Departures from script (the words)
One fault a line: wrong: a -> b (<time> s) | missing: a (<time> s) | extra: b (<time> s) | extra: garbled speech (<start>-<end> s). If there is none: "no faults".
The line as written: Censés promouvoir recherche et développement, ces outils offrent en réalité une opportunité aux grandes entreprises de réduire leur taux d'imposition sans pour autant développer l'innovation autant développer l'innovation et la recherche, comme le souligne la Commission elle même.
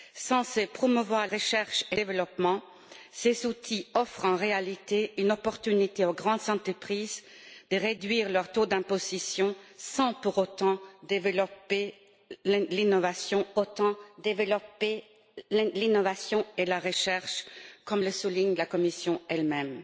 no faults